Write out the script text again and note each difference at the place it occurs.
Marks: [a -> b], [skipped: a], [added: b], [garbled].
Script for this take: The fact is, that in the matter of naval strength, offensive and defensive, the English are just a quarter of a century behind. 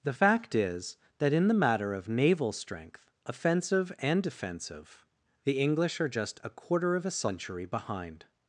The fact is, that in the matter of naval strength, offensive and defensive, the English are just a quarter of a century behind.